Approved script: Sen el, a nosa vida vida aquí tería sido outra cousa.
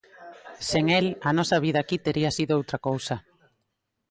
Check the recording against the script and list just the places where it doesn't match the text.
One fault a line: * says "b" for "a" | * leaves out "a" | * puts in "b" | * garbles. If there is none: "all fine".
* leaves out "vida"